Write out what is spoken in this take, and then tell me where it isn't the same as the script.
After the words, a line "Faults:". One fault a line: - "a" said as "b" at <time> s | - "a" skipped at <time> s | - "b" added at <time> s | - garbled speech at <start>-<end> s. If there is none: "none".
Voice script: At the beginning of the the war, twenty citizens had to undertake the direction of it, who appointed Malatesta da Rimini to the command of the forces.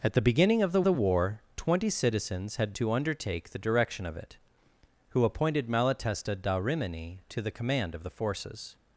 At the beginning of the the war, twenty citizens had to undertake the direction of it, who appointed Malatesta da Rimini to the command of the forces.
Faults:
none